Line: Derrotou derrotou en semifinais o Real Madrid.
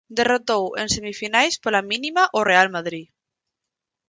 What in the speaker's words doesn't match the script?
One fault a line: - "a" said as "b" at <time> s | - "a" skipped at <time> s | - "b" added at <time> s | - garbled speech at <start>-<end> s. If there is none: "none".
- "derrotou" skipped at 0.6 s
- "pola mínima" added at 1.6 s